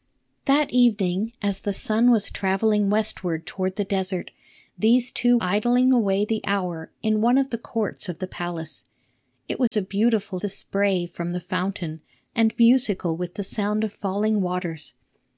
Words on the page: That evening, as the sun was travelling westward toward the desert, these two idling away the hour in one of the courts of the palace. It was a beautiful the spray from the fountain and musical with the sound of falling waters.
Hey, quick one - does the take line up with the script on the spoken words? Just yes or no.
yes